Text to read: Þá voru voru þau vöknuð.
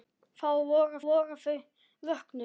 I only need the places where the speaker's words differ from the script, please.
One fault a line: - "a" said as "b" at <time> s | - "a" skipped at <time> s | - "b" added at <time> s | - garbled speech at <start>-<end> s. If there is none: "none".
none